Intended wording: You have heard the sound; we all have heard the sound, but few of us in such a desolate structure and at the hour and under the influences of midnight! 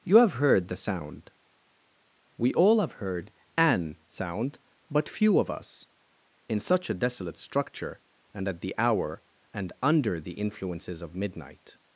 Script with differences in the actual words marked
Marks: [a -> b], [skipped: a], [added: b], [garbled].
You have heard the sound; we all have heard [the -> an] sound, but few of us in such a desolate structure and at the hour and under the influences of midnight!